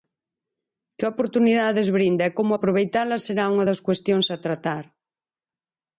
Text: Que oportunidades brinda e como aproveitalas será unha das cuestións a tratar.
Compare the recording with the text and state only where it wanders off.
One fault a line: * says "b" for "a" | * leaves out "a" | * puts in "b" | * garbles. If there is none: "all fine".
all fine